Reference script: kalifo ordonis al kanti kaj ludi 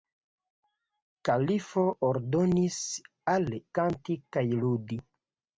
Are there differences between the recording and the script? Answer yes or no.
no